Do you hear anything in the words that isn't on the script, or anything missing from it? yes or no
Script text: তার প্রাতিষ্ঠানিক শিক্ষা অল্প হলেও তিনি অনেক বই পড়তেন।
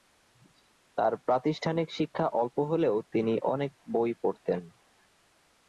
no